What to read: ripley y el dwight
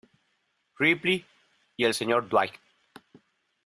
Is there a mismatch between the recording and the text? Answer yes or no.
yes